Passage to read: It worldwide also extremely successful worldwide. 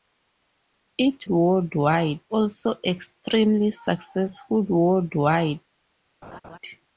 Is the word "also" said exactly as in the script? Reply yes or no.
yes